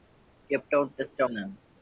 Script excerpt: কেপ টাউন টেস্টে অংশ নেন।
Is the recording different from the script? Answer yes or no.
yes